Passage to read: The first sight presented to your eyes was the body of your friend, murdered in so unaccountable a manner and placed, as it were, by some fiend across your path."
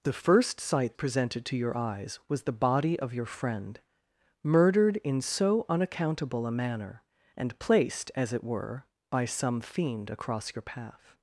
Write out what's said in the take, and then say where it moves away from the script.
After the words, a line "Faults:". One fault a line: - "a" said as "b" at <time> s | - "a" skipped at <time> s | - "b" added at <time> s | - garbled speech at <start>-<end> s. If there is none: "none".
The first sight presented to your eyes was the body of your friend, murdered in so unaccountable a manner and placed, as it were, by some fiend across your path."
Faults:
none